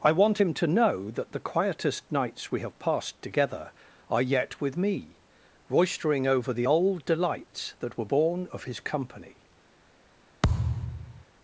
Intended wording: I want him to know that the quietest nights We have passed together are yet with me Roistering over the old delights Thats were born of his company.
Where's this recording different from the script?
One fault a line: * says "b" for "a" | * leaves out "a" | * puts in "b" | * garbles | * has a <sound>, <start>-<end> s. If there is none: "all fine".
* says "That" for "Thats"
* has a thud, 10.4-11.2 s